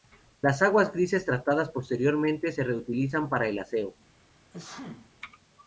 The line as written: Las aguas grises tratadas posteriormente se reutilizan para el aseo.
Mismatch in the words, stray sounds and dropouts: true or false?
true